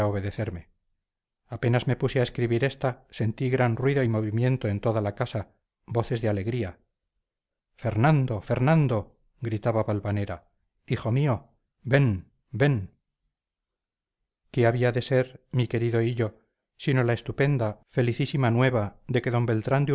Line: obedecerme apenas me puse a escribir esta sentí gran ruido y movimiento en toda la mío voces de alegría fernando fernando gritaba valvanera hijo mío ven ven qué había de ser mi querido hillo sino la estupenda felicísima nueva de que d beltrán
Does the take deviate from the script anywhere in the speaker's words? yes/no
yes